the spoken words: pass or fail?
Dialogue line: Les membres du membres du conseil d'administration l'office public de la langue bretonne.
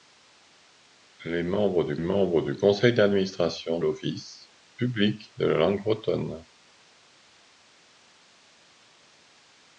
pass